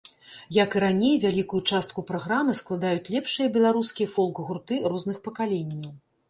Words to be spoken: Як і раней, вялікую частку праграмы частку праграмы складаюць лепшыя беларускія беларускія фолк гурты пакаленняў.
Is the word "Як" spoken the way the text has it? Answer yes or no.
yes